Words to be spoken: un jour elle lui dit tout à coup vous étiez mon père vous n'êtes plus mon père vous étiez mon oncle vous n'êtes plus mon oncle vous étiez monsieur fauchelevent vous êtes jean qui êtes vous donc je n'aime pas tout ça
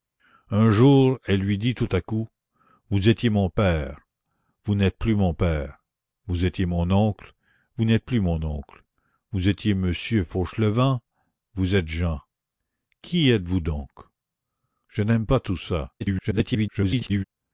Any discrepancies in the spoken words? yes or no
yes